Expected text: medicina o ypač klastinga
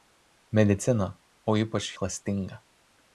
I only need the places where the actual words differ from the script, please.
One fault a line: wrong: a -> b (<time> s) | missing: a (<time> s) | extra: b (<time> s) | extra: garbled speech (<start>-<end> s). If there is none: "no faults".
no faults